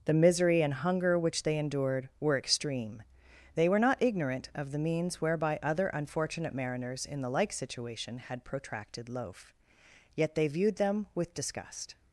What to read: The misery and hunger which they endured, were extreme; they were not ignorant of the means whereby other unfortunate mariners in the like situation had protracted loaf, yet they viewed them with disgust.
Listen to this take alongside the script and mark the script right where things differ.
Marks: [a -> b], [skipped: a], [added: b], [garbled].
The misery and hunger which they endured, were extreme; they were not ignorant of the means whereby other unfortunate mariners in the like situation had protracted loaf, yet they viewed them with disgust.